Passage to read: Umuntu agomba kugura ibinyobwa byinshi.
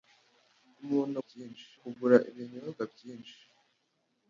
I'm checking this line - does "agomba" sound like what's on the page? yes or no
no